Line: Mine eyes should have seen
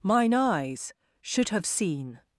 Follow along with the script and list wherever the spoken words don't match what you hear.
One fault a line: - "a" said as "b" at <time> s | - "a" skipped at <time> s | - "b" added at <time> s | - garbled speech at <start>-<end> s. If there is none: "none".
none